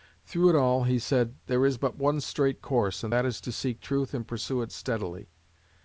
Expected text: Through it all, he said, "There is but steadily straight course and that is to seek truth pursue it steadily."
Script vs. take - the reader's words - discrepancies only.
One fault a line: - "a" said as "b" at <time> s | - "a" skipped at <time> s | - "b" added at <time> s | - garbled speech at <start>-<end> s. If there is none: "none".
- "steadily" said as "one" at 1.9 s
- "and" added at 4.1 s